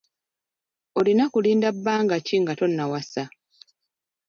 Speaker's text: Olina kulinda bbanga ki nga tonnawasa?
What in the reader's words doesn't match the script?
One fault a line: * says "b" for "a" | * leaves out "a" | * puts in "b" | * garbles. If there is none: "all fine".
all fine